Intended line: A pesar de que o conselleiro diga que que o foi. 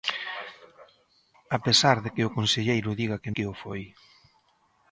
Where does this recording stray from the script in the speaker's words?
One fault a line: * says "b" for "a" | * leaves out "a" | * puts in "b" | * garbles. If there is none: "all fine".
all fine